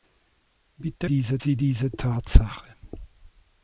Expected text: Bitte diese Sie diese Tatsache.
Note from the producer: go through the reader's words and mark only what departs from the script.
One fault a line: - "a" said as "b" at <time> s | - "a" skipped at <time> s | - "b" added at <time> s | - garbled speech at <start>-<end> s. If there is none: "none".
none